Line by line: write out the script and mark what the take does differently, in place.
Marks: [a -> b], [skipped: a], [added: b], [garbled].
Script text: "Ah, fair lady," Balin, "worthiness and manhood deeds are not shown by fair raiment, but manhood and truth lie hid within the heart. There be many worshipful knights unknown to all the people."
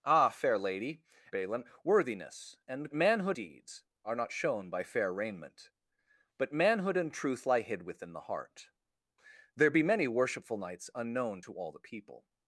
"Ah, fair lady," Balin, "worthiness and manhood deeds are not shown by fair raiment, but manhood and truth lie hid within the heart. There be many worshipful knights unknown to all the people."